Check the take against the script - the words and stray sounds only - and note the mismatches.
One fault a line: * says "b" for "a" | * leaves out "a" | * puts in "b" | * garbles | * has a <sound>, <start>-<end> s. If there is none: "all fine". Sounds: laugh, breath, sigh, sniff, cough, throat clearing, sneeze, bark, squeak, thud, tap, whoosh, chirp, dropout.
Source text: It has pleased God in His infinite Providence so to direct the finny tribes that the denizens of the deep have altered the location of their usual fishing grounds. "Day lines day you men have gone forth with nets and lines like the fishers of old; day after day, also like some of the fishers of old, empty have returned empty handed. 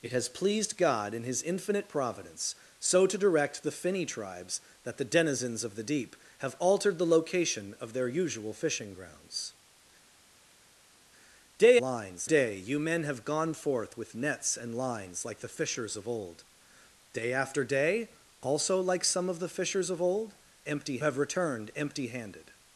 all fine